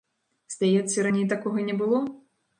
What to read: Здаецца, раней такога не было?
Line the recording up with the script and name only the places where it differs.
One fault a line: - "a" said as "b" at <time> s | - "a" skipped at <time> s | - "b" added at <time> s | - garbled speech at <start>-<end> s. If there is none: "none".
none